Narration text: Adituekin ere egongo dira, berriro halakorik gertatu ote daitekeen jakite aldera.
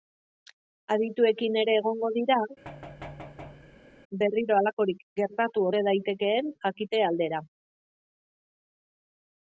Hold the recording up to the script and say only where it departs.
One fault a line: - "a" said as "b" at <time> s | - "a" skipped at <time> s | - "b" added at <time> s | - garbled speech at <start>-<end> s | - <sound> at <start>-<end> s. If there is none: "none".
- thud at 2.6-4.0 s